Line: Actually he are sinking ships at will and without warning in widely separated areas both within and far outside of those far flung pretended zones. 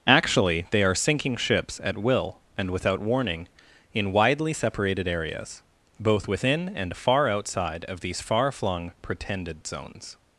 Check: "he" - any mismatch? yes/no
yes